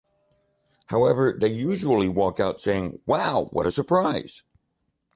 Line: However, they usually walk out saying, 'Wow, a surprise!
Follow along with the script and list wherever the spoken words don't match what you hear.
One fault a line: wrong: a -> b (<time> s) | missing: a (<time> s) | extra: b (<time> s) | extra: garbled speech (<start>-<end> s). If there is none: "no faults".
extra: what (3.5 s)